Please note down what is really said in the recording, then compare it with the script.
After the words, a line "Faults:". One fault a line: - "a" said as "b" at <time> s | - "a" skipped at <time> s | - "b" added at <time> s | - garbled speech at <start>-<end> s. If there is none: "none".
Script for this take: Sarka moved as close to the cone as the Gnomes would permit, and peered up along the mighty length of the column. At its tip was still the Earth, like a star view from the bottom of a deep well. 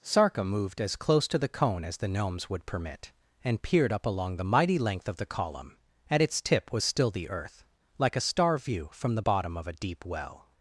Sarka moved as close to the cone as the Gnomes would permit, and peered up along the mighty length of the column. At its tip was still the Earth, like a star view from the bottom of a deep well.
Faults:
none